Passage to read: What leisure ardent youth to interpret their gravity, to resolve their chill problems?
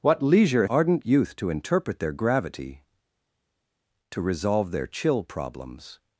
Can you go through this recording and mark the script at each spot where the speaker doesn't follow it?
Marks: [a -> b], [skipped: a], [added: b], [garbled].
What leisure ardent youth to interpret their gravity, to resolve their chill problems?